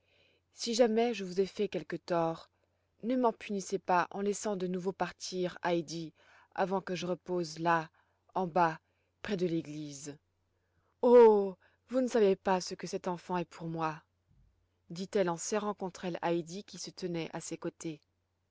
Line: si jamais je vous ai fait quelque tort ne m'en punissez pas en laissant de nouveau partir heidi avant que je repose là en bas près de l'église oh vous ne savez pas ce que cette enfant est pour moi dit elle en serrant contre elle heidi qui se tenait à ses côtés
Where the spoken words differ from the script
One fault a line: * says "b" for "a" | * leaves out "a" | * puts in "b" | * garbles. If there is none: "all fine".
all fine